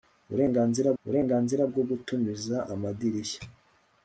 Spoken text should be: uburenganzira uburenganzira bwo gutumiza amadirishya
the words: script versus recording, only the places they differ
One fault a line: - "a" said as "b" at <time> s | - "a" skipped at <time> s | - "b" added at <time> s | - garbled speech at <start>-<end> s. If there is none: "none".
none